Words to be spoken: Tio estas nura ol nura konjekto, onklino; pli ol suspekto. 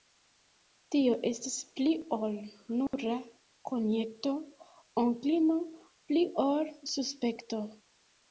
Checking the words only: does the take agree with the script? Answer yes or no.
no